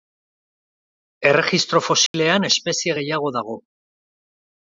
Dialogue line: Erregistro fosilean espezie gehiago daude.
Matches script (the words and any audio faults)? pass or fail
fail